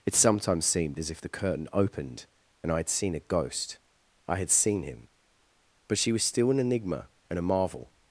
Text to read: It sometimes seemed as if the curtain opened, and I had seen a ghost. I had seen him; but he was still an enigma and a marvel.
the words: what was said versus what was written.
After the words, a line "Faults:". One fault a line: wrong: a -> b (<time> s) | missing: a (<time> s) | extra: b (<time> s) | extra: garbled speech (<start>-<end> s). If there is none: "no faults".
It sometimes seemed as if the curtain opened, and I had seen a ghost. I had seen him; but she was still an enigma and a marvel.
Faults:
wrong: he -> she (6.0 s)